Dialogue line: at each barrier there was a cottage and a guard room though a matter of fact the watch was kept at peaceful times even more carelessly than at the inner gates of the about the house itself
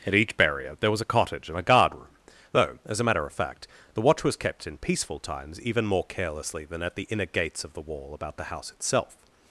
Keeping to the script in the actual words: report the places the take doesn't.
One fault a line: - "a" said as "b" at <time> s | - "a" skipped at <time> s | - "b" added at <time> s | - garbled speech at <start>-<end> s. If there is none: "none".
- "as" added at 2.9 s
- "at" said as "in" at 4.7 s
- "wall" added at 7.8 s